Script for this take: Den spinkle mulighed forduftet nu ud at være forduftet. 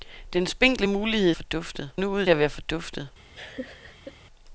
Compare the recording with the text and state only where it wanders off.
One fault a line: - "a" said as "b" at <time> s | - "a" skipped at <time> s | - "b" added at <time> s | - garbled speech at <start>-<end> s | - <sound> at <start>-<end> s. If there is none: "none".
- laugh at 3.3-4.2 s